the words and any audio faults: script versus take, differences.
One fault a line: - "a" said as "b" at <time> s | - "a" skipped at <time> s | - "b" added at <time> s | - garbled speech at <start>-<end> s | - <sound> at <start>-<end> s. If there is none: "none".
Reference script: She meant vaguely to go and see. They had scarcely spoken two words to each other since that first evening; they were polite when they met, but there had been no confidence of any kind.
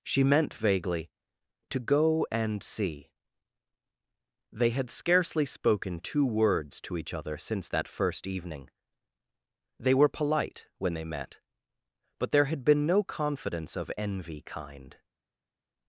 - "any" said as "envy" at 14.0 s